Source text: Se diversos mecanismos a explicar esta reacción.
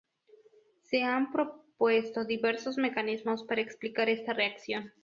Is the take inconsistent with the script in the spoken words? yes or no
yes